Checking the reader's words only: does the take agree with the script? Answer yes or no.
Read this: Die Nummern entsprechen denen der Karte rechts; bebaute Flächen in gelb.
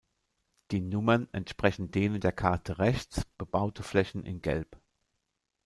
yes